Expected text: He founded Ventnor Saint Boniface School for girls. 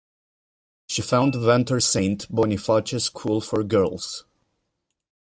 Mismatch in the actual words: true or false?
true